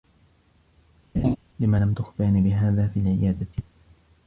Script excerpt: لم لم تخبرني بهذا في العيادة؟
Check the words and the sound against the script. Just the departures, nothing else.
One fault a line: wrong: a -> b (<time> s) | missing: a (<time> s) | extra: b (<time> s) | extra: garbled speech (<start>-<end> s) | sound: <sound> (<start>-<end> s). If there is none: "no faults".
sound: laugh (1.1-1.4 s)